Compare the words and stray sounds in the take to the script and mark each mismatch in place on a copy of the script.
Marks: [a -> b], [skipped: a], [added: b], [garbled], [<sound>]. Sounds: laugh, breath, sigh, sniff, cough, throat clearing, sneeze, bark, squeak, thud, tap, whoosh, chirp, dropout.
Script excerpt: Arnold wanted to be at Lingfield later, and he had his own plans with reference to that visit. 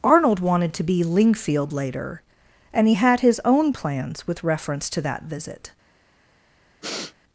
Arnold wanted to be [skipped: at] Lingfield later, and he had his own plans with reference to that visit. [sniff]